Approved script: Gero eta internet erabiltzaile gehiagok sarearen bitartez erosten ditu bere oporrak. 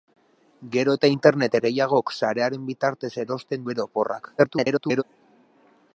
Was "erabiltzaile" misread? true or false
true